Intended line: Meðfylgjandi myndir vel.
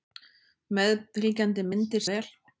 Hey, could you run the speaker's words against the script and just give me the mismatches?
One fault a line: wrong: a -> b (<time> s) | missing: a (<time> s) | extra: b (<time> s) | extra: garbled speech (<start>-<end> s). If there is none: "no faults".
no faults